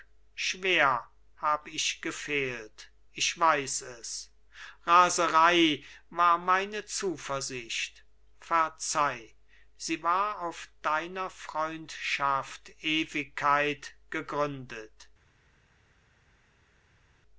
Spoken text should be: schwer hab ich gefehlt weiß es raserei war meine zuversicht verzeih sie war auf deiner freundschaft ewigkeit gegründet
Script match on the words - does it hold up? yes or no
no